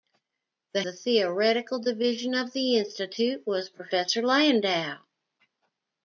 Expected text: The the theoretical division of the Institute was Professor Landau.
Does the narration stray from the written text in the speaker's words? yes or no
no